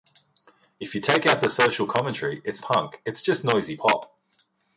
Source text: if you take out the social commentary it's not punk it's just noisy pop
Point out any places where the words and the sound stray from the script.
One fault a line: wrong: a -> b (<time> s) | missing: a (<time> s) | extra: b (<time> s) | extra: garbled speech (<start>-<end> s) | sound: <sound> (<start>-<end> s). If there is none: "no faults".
missing: not (2.6 s)